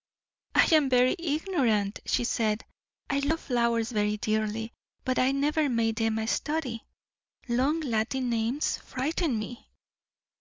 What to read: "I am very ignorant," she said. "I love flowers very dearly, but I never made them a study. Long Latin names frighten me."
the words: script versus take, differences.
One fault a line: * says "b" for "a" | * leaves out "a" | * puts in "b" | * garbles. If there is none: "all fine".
all fine